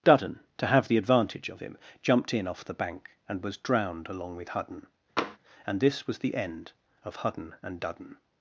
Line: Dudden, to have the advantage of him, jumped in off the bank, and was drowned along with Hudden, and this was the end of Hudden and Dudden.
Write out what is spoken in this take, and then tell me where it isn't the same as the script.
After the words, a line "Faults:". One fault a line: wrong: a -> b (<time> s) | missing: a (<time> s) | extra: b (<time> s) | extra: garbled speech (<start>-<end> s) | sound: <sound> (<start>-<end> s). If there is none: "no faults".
Dudden, to have the advantage of him, jumped in off the bank, and was drowned along with Hudden, and this was the end of Hudden and Dudden.
Faults:
sound: tap (5.2-5.4 s)